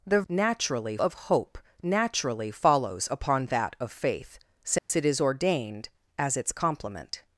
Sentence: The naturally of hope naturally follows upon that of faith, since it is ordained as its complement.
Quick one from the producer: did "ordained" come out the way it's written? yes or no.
yes